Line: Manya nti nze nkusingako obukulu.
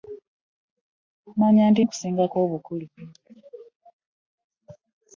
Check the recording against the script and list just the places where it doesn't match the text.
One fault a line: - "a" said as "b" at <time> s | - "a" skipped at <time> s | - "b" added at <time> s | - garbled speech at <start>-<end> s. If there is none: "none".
- "nze" skipped at 1.8 s